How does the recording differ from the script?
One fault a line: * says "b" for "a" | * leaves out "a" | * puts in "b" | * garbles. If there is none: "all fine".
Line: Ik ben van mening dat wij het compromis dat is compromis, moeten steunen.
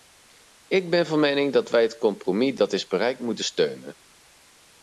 * says "bereikt" for "compromis"